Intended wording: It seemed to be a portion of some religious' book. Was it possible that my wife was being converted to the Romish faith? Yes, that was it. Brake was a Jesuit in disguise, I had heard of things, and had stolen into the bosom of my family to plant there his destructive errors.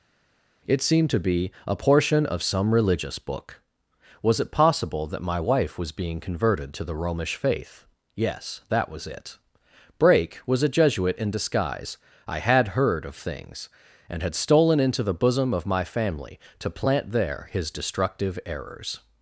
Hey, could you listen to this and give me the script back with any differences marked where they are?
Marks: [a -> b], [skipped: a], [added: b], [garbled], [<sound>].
It seemed to be a portion of some religious' book. Was it possible that my wife was being converted to the Romish faith? Yes, that was it. Brake was a Jesuit in disguise, I had heard of things, and had stolen into the bosom of my family to plant there his destructive errors.